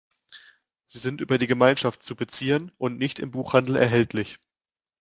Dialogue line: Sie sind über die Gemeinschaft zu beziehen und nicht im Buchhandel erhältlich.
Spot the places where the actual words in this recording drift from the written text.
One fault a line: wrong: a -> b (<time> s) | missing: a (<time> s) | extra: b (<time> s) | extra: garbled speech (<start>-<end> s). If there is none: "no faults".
no faults